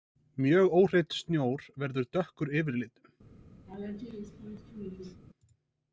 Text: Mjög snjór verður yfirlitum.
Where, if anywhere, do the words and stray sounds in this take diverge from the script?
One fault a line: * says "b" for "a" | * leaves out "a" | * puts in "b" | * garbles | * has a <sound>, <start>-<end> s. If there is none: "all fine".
* puts in "óhreinn"
* puts in "dökkur"
* has a laugh, 3.7-5.2 s